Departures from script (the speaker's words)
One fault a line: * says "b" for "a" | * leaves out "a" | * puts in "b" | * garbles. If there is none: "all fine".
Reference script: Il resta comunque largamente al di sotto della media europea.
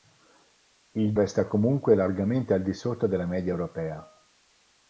all fine